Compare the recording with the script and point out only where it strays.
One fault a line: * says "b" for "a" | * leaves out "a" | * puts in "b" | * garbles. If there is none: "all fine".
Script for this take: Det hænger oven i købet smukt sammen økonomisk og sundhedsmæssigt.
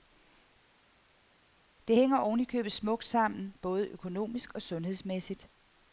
* puts in "både"